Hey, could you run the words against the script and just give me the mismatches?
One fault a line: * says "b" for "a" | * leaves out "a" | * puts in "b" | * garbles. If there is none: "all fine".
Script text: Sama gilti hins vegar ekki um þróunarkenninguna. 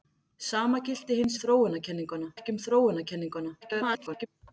* says "þróunarkenninguna" for "vegar"
* garbles